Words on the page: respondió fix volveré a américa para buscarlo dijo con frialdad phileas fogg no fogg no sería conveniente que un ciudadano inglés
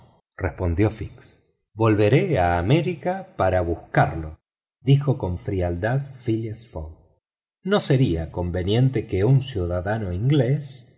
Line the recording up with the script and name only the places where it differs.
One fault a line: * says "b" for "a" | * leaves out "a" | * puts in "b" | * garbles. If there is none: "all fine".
* leaves out "fogg no"